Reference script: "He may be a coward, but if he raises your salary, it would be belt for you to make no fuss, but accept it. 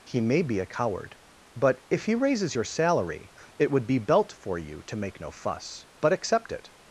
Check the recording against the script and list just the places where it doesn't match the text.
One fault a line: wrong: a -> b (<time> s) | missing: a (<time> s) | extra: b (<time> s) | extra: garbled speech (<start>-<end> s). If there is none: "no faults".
no faults